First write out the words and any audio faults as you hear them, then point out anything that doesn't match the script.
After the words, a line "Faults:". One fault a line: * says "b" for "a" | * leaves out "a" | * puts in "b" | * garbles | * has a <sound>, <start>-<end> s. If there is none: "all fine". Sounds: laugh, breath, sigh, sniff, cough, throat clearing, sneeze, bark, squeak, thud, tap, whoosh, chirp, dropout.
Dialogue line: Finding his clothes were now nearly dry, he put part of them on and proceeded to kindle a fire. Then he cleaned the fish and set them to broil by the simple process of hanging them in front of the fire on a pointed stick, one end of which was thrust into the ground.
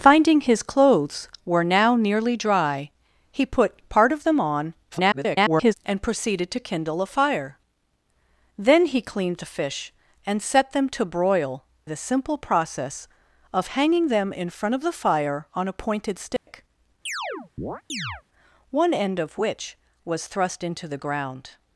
Finding his clothes were now nearly dry, he put part of them on [garbled] and proceeded to kindle a fire. Then he cleaned the fish and set them to broil the simple process of hanging them in front of the fire on a pointed stick, one end of which was thrust into the ground.
Faults:
* garbles
* leaves out "by"
* has a dropout, 16.4-16.5 s
* has a chirp, 17.1-18.2 s